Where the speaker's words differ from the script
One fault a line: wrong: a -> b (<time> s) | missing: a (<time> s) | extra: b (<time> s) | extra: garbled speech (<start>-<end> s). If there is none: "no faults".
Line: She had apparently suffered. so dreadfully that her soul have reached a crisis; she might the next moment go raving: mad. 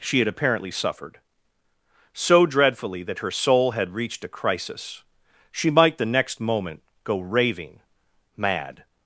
wrong: have -> had (3.7 s)